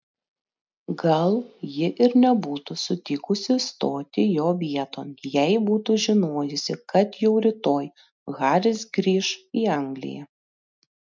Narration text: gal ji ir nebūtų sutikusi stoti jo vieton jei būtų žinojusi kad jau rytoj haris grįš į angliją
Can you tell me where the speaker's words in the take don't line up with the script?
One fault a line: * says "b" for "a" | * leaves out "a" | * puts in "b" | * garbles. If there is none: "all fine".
all fine